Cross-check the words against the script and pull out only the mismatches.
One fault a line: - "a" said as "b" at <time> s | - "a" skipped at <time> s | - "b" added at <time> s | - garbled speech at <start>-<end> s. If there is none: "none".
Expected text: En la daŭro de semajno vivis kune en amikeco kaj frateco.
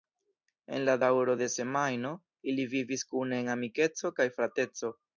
- "ili" added at 2.5 s